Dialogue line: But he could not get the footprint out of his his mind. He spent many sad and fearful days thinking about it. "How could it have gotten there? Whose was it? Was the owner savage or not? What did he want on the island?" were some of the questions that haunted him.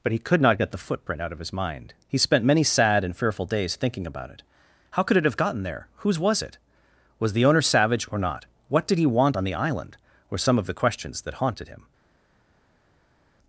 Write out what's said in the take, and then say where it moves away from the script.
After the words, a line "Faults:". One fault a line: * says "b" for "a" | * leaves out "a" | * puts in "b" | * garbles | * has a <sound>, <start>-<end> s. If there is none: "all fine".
But he could not get the footprint out of his mind. He spent many sad and fearful days thinking about it. "How could it have gotten there? Whose was it? Was the owner savage or not? What did he want on the island?" were some of the questions that haunted him.
Faults:
* leaves out "his"